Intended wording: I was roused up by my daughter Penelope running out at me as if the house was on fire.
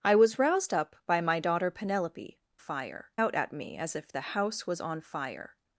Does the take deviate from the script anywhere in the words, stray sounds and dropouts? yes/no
yes